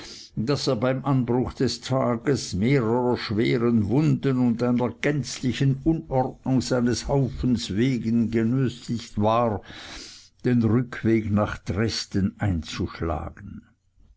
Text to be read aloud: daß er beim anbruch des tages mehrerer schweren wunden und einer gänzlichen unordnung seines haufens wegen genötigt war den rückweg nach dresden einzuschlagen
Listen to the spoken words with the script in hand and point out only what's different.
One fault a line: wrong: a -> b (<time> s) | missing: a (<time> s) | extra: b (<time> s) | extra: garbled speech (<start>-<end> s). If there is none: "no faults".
no faults